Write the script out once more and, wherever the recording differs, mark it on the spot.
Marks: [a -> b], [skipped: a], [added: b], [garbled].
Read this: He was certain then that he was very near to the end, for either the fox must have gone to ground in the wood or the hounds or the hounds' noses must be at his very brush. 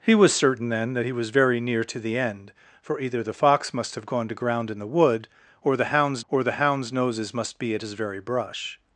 He was certain then that he was very near to the end, for either the fox must have gone to ground in the wood or the hounds or the hounds' noses must be at his very brush.